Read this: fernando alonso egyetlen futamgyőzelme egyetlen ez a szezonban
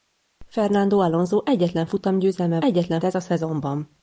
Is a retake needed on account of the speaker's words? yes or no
no